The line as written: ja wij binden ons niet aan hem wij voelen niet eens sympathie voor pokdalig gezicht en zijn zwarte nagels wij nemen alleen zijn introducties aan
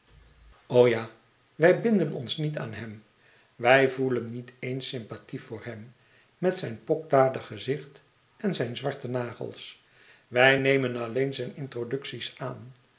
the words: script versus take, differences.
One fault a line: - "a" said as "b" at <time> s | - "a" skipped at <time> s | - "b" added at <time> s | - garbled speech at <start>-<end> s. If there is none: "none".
- "hem met zijn" added at 5.7 s